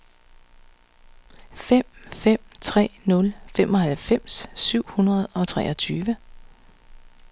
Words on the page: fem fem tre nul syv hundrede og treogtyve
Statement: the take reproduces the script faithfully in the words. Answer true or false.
false